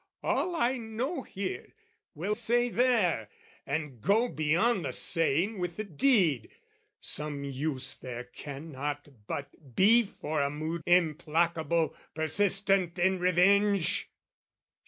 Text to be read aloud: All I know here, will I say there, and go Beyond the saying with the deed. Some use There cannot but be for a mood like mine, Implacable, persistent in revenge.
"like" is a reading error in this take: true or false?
true